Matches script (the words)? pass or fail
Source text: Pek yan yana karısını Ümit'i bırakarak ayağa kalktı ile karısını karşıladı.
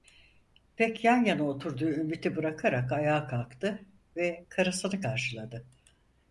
fail